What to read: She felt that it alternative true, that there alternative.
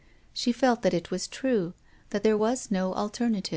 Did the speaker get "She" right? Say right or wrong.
right